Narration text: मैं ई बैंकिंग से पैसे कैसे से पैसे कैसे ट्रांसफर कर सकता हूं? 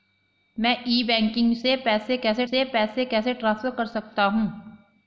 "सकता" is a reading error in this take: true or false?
false